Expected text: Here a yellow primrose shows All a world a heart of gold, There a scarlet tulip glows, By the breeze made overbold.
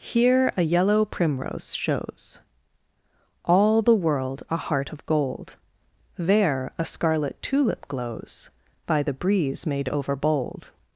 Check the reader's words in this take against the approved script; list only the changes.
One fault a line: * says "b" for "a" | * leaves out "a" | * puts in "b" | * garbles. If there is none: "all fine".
* says "the" for "a"